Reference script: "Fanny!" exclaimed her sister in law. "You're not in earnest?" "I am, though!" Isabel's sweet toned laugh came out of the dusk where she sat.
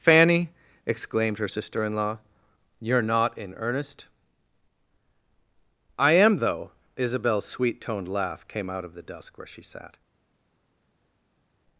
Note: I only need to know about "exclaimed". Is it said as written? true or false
true